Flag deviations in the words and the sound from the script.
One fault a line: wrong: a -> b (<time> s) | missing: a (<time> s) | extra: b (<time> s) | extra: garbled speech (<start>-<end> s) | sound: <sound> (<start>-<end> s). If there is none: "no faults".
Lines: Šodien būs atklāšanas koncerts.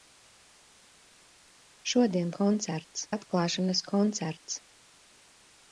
wrong: būs -> koncerts (2.4 s)